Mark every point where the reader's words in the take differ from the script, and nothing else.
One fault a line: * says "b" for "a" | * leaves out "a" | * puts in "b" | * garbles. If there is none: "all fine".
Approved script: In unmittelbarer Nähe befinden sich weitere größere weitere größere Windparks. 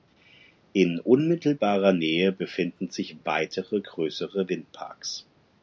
* leaves out "weitere größere"